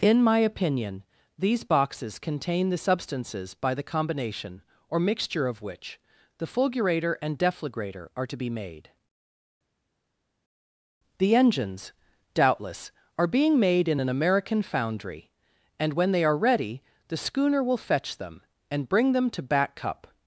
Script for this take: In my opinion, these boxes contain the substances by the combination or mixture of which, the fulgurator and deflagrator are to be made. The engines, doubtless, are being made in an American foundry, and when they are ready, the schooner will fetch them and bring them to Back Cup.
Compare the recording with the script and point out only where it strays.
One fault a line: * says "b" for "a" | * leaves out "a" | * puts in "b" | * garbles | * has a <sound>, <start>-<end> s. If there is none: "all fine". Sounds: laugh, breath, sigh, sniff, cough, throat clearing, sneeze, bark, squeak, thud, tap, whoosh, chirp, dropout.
all fine